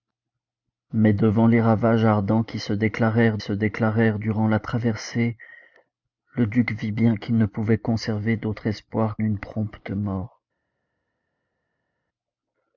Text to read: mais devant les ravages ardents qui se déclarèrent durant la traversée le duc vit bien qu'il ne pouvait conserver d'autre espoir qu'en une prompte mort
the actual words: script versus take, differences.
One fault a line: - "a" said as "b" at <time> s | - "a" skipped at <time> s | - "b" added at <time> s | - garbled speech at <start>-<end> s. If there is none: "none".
- "se déclarèrent" added at 3.4 s
- "qu'en" skipped at 9.2 s